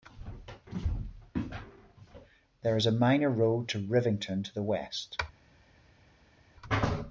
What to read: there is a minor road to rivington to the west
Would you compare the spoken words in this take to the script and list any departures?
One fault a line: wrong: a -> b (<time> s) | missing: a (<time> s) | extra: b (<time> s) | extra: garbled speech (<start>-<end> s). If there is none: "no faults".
no faults